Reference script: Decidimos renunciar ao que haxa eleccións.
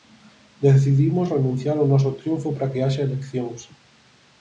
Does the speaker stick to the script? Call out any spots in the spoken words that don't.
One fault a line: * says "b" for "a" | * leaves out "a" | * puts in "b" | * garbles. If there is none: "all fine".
* puts in "noso triunfo para"